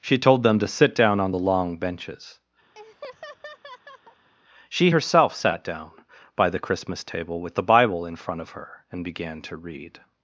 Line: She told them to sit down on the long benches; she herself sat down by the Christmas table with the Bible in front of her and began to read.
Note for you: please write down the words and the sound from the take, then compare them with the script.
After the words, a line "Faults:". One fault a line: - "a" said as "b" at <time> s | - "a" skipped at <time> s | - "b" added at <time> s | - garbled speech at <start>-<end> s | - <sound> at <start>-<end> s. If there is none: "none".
She told them to sit down on the long benches; she herself sat down by the Christmas table with the Bible in front of her and began to read.
Faults:
- laugh at 2.7-4.3 s